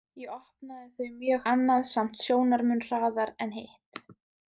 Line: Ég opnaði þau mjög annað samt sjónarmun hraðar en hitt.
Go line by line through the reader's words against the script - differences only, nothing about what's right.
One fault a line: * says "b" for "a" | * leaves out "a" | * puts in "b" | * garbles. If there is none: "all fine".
all fine